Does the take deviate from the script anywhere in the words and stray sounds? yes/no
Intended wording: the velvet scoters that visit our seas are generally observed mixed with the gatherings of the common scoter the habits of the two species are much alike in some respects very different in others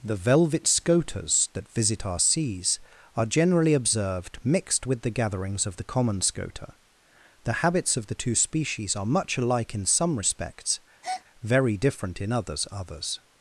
yes